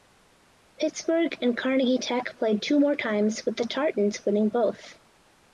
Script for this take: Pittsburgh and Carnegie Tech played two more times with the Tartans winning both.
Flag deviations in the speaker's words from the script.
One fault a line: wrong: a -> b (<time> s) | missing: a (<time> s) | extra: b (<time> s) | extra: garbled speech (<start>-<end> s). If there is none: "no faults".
no faults